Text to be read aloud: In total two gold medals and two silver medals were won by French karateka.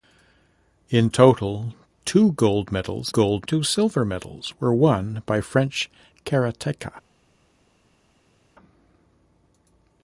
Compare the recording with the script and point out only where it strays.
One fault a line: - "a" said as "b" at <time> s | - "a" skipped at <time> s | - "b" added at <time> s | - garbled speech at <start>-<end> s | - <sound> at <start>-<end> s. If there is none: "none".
- "and" said as "gold" at 3.1 s